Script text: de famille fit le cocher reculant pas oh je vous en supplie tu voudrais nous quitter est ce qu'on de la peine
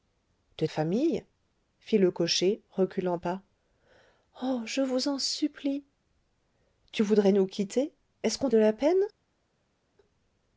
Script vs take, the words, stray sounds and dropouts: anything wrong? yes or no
no